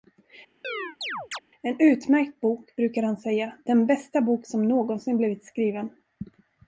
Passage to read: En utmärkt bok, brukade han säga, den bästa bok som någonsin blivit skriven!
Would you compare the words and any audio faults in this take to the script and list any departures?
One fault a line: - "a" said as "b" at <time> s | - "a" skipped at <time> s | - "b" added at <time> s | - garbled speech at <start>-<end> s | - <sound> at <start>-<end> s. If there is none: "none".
- chirp at 0.6-1.4 s